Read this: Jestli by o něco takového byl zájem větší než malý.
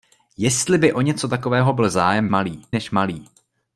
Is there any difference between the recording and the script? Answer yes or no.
yes